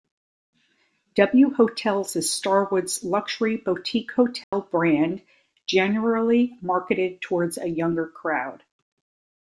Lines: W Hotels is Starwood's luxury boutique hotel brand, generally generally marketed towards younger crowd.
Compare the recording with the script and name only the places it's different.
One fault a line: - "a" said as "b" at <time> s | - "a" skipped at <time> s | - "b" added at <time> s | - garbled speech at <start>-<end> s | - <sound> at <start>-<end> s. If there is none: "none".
- dropout at 4.4-4.5 s
- "generally" skipped at 6.5 s
- "a" added at 7.6 s